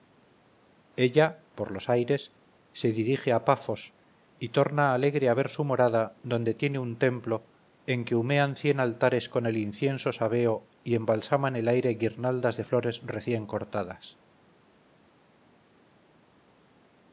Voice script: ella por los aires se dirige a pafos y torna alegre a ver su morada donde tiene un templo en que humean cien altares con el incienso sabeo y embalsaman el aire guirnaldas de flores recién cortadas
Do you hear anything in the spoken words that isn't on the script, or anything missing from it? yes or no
no